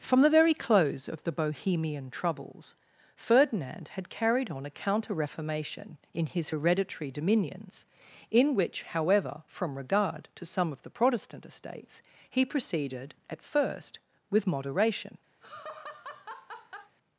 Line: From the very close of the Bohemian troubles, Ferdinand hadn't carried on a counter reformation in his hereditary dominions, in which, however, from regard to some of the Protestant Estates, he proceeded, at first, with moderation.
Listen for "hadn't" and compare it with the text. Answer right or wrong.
wrong